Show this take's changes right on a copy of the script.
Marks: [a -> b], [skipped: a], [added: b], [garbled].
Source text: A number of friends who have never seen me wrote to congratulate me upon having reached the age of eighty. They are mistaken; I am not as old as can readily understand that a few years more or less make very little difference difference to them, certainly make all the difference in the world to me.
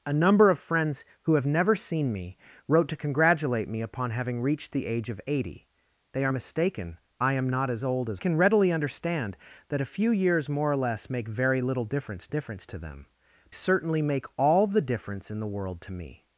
A number of friends who have never seen me wrote to congratulate me upon having reached the age of eighty. They are mistaken; I am not as old as can readily understand that a few years more or less make very little difference difference to them, certainly make all the difference in the world to me.